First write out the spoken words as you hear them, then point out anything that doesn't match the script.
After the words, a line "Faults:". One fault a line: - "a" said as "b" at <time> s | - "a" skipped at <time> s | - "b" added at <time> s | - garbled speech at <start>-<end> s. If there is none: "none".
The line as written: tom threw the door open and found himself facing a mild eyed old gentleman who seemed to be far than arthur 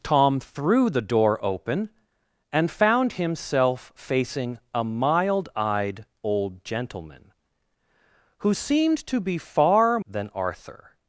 tom threw the door open and found himself facing a mild eyed old gentleman who seemed to be far than arthur
Faults:
none